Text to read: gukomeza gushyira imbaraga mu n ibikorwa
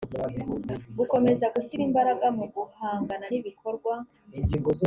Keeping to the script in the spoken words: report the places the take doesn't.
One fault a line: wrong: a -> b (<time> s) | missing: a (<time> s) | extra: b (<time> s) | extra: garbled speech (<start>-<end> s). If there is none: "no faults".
extra: guhangana (2.5 s)